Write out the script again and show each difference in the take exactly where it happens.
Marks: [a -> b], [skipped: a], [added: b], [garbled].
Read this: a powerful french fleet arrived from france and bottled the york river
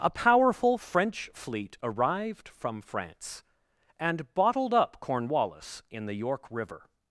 a powerful french fleet arrived from france and bottled [added: up cornwallis in] the york river